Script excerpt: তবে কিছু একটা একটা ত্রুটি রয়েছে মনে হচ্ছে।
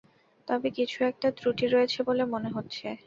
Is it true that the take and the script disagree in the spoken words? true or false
true